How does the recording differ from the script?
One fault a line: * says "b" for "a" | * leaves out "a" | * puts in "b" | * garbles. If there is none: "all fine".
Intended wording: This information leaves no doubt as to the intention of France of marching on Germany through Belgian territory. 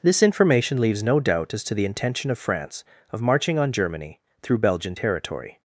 all fine